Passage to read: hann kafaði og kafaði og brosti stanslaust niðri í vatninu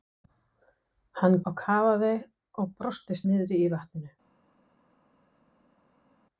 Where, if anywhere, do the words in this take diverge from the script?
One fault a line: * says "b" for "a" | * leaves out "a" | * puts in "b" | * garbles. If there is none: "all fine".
* leaves out "kafaði"
* leaves out "stanslaust"